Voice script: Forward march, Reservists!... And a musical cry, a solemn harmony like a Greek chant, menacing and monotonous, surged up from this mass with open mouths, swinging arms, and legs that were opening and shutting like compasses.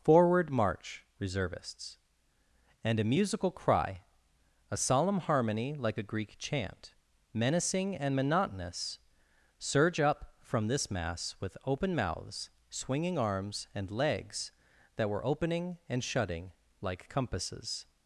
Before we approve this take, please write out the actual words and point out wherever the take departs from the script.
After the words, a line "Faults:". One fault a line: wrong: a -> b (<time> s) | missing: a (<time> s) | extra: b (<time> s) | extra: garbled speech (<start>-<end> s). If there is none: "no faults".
Forward march, Reservists!... And a musical cry, a solemn harmony like a Greek chant, menacing and monotonous, surge up from this mass with open mouths, swinging arms, and legs that were opening and shutting like compasses.
Faults:
wrong: surged -> surge (9.6 s)